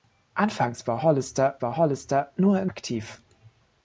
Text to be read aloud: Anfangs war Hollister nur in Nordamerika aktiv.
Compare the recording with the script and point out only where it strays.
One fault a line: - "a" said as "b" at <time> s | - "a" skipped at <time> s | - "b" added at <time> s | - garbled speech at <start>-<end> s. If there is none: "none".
- "war Hollister" added at 1.6 s
- "Nordamerika" skipped at 2.7 s